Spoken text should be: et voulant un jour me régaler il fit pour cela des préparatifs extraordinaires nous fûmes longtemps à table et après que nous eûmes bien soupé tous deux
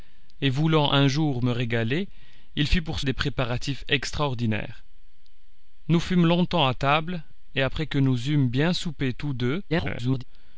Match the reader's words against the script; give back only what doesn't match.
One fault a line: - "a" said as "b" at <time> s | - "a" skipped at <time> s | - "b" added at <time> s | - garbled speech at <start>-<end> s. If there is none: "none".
- "cela" skipped at 3.0 s
- garbled speech at 9.7-10.2 s